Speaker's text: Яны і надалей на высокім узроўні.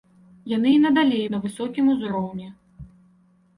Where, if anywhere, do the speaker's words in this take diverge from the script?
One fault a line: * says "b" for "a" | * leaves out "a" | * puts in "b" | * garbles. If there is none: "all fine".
all fine